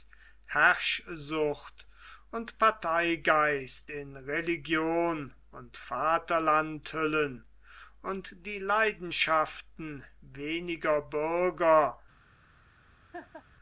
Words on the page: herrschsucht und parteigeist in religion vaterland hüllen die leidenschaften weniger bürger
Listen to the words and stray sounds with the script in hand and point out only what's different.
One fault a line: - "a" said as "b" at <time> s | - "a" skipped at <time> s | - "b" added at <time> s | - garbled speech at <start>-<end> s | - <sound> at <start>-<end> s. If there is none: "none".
- "und" added at 5.5 s
- "und" added at 8.0 s
- laugh at 13.1-13.4 s